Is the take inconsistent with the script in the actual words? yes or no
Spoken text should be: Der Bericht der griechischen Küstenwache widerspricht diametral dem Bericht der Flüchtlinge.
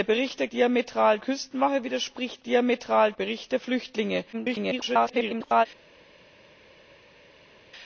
yes